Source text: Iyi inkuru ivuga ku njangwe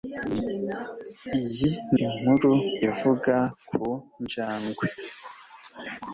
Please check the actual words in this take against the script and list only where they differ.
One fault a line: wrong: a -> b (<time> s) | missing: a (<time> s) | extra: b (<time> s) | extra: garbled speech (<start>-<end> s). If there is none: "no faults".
no faults